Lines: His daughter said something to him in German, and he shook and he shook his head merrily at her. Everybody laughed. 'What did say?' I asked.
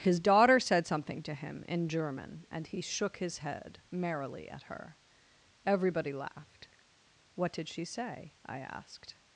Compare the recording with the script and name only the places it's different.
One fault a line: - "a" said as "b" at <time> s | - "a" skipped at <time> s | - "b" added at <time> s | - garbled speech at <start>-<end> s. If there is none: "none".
- "and he shook" skipped at 3.2 s
- "she" added at 7.7 s